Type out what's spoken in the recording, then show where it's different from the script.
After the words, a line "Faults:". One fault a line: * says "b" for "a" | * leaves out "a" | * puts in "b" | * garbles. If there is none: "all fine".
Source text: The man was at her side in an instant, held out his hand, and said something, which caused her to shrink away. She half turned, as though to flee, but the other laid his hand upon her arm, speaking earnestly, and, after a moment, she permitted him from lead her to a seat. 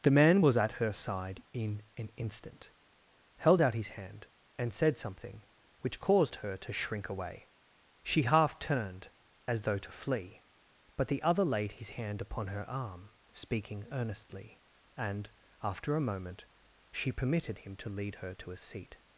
The man was at her side in an instant, held out his hand, and said something, which caused her to shrink away. She half turned, as though to flee, but the other laid his hand upon her arm, speaking earnestly, and, after a moment, she permitted him to lead her to a seat.
Faults:
* says "to" for "from"